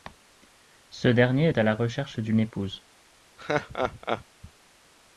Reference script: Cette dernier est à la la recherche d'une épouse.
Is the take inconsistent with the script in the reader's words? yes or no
yes